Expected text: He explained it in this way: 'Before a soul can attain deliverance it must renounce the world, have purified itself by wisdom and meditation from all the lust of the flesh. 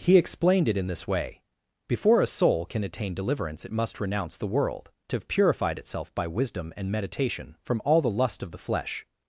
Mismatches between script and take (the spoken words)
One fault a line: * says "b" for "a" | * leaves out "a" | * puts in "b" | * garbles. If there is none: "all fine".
all fine